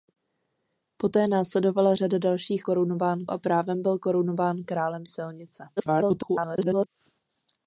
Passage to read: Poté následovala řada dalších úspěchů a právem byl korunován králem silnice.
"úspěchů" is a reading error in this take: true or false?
true